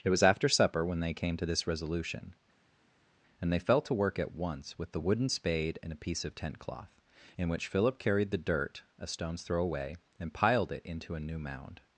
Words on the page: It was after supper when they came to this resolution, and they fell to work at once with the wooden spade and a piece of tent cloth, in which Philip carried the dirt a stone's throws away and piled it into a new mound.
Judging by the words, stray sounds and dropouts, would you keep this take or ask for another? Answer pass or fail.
fail